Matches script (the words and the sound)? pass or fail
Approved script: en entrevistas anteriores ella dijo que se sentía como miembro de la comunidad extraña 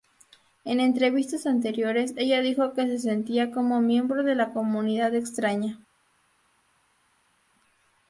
pass